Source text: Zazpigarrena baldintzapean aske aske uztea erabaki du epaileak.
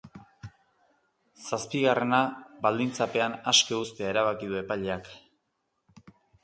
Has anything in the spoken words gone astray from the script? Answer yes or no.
yes